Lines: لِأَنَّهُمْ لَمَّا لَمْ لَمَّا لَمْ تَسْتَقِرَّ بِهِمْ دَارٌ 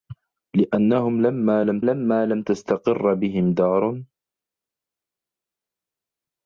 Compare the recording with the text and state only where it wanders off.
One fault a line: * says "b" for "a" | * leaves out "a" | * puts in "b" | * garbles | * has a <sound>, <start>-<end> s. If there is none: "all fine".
all fine